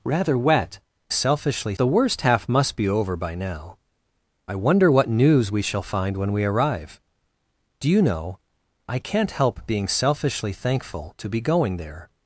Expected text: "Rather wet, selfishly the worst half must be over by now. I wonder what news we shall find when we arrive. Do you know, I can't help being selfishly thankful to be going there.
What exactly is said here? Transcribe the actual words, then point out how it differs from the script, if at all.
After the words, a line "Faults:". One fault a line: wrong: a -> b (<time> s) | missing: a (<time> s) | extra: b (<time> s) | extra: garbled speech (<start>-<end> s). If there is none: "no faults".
"Rather wet, selfishly the worst half must be over by now. I wonder what news we shall find when we arrive. Do you know, I can't help being selfishly thankful to be going there.
Faults:
no faults